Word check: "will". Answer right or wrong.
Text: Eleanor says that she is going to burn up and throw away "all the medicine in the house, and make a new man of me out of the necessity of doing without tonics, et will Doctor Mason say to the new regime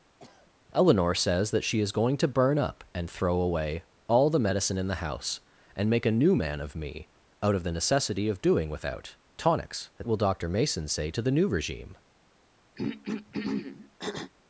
right